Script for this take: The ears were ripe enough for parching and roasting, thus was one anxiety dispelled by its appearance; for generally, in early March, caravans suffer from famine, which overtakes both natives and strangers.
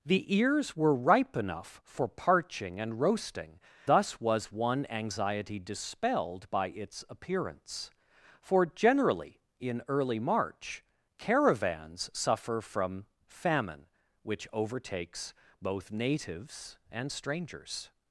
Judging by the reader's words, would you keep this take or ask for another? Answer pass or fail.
pass